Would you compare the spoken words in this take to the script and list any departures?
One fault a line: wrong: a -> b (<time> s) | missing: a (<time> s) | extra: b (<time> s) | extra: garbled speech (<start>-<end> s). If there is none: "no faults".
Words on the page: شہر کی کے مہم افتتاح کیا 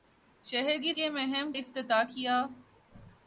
no faults